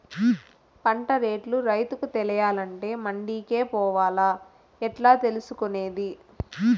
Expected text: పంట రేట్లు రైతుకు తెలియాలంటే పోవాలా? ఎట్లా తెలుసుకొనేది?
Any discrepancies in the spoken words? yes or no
yes